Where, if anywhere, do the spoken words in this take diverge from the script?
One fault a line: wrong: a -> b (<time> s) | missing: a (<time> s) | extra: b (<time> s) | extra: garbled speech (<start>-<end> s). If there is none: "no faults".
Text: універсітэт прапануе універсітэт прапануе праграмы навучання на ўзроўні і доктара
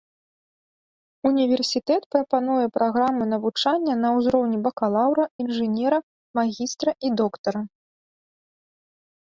missing: універсітэт прапануе (2.6 s)
extra: бакалаўра інжынера магістра (4.7 s)